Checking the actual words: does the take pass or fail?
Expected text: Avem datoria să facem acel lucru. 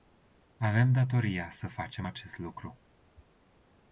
fail